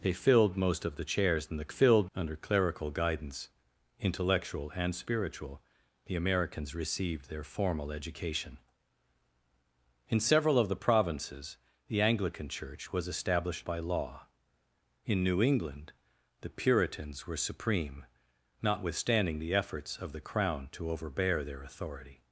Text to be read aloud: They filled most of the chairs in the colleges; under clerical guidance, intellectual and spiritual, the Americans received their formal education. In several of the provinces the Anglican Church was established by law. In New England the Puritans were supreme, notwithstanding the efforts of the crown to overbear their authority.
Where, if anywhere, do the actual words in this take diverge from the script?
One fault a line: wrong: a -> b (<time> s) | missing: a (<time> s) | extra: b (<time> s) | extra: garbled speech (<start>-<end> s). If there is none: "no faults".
wrong: colleges -> filled (1.7 s)